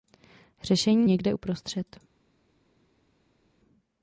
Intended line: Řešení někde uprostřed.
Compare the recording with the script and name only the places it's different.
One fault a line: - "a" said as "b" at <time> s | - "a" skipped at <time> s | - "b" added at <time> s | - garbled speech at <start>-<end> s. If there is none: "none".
none